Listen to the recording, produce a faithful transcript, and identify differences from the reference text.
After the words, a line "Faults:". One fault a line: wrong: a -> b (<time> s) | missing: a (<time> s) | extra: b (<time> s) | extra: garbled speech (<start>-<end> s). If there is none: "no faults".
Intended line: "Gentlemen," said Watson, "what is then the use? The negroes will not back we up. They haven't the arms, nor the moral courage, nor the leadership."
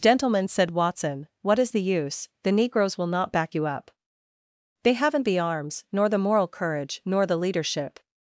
"Gentlemen," said Watson, "what is the use? The negroes will not back you up. They haven't the arms, nor the moral courage, nor the leadership."
Faults:
missing: then (1.7 s)
wrong: we -> you (3.5 s)